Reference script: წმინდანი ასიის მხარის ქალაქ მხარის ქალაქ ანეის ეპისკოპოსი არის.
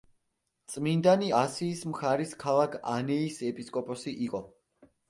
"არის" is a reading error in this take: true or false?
true